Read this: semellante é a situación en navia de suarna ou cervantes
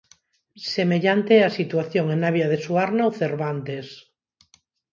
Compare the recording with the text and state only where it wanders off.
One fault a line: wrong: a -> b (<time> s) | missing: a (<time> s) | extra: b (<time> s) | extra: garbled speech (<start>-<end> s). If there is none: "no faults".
no faults